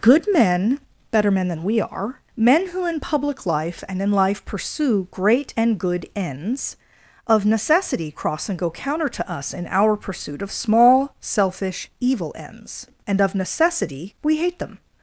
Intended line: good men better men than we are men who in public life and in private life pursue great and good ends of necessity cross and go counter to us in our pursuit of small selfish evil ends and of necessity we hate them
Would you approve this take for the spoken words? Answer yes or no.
no